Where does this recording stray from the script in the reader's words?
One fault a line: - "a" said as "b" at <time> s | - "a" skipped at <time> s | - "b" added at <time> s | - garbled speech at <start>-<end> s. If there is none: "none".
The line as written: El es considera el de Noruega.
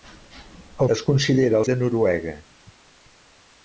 none